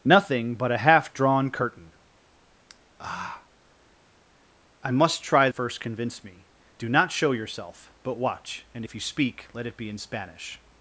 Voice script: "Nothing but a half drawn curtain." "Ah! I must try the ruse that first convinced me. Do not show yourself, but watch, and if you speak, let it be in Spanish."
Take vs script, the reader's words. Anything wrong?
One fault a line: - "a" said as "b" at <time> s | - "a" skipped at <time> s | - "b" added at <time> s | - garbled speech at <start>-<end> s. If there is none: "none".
- "the ruse that" skipped at 5.5 s